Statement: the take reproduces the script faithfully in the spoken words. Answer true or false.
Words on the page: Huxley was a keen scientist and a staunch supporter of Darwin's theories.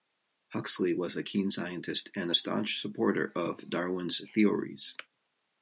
true